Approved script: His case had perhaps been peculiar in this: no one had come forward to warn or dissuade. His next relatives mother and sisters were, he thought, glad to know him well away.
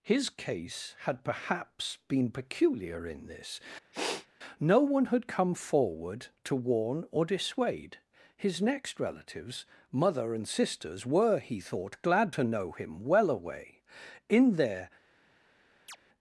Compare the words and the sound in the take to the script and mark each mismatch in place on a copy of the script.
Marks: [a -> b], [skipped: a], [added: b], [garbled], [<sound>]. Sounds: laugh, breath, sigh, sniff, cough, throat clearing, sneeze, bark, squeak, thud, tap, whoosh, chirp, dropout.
His case had perhaps been peculiar in this: [sniff] no one had come forward to warn or dissuade. His next relatives mother and sisters were, he thought, glad to know him well away. [added: In their] [chirp]